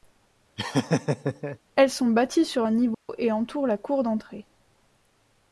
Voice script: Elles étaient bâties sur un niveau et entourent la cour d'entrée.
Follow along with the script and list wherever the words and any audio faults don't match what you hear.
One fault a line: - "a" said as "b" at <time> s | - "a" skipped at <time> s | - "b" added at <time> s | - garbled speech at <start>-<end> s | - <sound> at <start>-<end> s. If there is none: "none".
- laugh at 0.6-1.6 s
- "étaient" said as "sont" at 1.9 s
- dropout at 2.9-3.1 s